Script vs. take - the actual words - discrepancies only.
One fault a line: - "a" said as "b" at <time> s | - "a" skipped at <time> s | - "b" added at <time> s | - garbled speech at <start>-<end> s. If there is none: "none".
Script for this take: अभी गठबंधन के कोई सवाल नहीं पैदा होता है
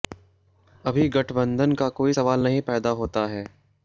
- "के" said as "का" at 1.7 s